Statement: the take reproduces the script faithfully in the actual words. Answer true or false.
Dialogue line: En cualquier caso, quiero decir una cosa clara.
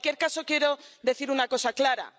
true